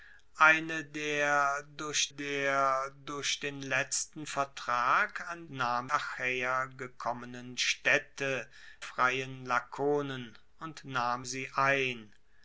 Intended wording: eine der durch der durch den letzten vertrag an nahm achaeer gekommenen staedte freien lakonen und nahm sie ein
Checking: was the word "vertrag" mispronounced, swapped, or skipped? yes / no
no